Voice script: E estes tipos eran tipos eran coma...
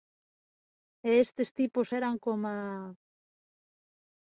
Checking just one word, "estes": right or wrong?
right